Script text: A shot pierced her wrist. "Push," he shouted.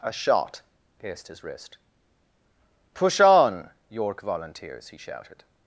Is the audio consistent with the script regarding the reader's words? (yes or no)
no